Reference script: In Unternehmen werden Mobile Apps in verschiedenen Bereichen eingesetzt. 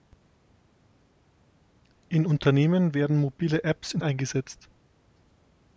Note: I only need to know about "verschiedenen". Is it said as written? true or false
false